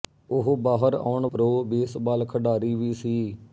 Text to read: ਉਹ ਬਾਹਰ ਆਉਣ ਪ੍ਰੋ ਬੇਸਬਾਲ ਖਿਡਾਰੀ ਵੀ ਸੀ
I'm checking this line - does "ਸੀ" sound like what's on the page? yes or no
yes